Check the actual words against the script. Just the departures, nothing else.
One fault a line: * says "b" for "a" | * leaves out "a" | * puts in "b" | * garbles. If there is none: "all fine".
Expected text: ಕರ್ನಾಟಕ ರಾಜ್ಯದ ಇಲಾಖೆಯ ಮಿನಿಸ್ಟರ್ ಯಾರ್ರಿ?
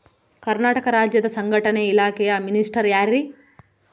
* puts in "ಸಂಘಟನೆ"